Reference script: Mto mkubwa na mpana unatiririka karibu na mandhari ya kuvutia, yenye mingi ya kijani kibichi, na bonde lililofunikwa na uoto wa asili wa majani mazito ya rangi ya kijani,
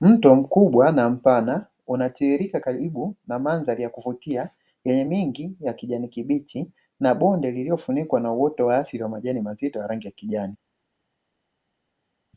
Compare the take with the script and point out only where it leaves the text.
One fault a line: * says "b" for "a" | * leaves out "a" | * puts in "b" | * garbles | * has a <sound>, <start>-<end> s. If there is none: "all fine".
all fine